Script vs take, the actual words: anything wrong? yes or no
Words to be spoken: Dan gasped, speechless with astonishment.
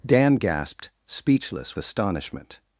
yes